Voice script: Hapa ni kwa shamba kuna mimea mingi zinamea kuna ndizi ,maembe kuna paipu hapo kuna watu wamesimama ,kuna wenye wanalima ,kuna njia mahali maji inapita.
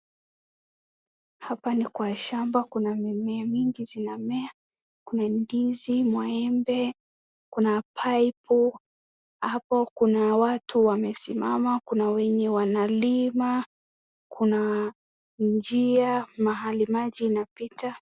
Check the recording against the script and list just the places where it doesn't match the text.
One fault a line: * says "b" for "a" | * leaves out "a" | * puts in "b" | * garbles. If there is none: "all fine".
all fine